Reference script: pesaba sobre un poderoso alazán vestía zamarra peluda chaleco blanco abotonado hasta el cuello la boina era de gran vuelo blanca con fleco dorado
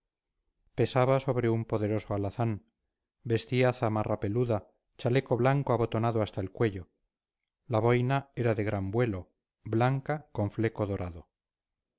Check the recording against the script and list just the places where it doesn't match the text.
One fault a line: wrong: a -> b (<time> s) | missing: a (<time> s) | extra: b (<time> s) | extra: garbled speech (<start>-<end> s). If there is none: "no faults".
no faults